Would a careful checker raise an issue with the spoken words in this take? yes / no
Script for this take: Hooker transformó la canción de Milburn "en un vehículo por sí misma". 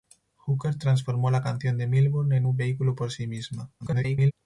yes